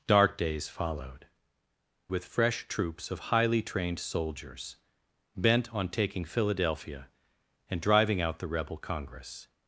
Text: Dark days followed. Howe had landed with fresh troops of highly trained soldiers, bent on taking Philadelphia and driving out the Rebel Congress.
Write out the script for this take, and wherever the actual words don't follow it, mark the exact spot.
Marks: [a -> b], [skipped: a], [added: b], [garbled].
Dark days followed. [skipped: Howe had landed] with fresh troops of highly trained soldiers, bent on taking Philadelphia and driving out the Rebel Congress.